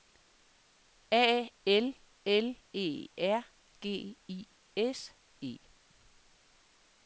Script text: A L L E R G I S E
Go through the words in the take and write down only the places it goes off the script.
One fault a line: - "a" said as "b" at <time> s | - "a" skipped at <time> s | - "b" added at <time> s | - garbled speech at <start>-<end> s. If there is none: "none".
none